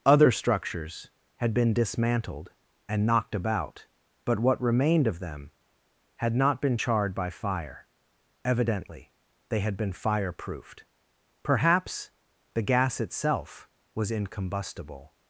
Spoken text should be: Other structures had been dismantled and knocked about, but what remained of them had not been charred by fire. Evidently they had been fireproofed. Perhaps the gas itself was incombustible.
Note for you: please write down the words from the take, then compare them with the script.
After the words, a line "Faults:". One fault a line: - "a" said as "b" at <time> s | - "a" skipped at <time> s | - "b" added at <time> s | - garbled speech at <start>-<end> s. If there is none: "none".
Other structures had been dismantled and knocked about, but what remained of them had not been charred by fire. Evidently they had been fireproofed. Perhaps the gas itself was incombustible.
Faults:
none